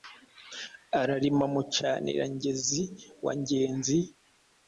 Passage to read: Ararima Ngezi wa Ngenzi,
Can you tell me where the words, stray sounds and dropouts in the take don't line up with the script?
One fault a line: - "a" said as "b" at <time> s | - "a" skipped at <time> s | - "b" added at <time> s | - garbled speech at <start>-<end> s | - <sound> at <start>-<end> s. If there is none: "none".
- "Mucanira" added at 1.5 s